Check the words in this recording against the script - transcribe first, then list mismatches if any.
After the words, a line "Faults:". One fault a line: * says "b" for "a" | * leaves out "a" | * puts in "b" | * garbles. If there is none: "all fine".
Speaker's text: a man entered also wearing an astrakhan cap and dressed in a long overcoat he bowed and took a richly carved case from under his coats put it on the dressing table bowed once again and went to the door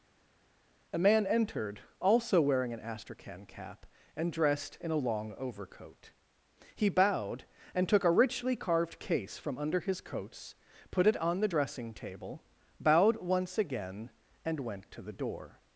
a man entered also wearing an astrakhan cap and dressed in a long overcoat he bowed and took a richly carved case from under his coats put it on the dressing table bowed once again and went to the door
Faults:
all fine